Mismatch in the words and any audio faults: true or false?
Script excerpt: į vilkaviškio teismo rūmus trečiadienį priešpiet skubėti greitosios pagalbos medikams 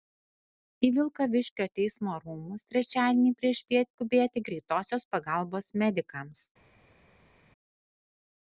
false